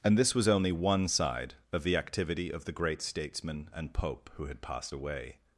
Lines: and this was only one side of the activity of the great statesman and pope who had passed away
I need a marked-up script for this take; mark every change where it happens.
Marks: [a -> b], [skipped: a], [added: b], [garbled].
and this was only one side of the activity of the great statesman and pope who had passed away